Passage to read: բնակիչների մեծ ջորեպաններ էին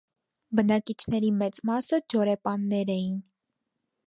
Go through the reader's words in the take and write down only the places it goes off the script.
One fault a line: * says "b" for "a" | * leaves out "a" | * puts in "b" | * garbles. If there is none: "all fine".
* puts in "մասը"